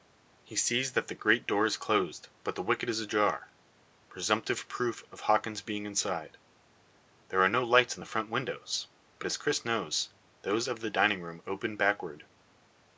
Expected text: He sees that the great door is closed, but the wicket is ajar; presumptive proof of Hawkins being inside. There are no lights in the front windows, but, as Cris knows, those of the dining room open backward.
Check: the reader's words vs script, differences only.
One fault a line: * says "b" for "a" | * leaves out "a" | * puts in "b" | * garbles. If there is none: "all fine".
all fine